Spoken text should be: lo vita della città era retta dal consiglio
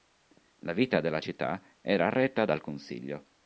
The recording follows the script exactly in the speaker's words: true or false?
false